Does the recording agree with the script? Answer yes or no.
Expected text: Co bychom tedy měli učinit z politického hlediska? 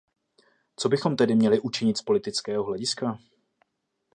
yes